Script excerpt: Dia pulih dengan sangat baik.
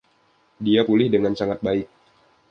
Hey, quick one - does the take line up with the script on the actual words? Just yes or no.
yes